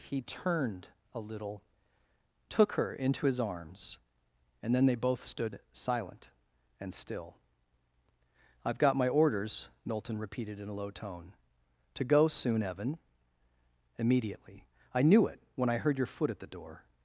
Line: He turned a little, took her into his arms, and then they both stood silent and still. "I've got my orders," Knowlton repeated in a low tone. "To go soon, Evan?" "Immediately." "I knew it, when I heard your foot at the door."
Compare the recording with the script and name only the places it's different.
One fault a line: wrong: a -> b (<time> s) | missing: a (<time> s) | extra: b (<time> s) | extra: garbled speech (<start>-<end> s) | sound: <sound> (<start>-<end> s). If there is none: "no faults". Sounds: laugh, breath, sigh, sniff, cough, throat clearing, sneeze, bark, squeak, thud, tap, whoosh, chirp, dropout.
no faults